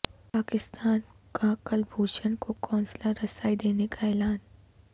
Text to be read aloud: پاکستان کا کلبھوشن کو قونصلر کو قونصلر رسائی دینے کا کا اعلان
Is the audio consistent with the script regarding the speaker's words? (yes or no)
no